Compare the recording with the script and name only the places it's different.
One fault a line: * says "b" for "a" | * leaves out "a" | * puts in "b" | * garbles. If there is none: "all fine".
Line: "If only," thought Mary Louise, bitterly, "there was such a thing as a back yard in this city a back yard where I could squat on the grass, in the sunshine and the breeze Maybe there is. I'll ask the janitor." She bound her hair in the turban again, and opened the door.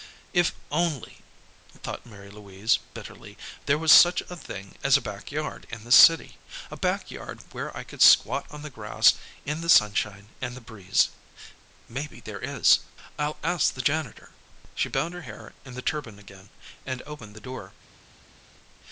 all fine